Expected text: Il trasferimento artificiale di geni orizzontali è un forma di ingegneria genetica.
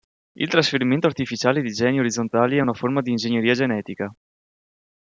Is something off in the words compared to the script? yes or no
yes